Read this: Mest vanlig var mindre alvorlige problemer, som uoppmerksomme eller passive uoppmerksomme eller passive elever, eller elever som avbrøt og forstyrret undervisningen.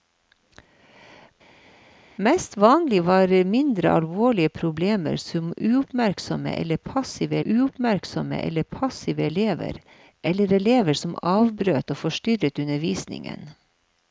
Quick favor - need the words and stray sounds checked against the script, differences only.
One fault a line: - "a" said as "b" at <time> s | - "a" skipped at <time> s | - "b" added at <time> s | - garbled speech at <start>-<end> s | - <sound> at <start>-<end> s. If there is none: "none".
none